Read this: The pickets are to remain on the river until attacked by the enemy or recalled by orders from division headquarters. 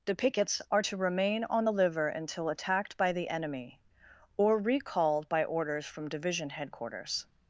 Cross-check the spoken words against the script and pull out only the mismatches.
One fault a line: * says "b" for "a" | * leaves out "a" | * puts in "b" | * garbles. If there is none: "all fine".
* says "liver" for "river"